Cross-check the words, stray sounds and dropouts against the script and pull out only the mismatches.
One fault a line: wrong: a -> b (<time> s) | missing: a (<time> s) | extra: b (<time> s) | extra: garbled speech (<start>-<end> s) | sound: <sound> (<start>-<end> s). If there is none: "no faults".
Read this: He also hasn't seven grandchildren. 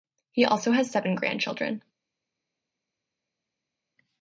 wrong: hasn't -> has (0.7 s)